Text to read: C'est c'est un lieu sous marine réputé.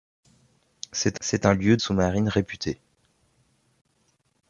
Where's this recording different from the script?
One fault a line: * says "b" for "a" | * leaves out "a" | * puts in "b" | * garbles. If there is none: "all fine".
all fine